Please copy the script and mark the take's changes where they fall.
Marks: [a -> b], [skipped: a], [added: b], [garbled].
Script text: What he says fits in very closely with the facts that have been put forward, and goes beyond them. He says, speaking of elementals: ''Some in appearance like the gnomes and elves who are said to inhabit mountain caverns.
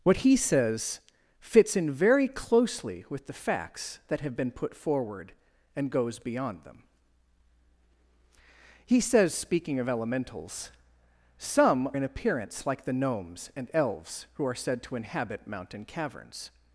What he says fits in very closely with the facts that have been put forward, and goes beyond them. He says, speaking of elementals: ''Some in appearance like the gnomes and elves who are said to inhabit mountain caverns.